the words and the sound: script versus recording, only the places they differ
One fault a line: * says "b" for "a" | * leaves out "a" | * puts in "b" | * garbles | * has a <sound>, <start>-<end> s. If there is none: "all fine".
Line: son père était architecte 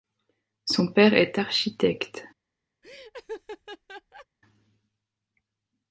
* says "est" for "était"
* has a laugh, 2.8-4.3 s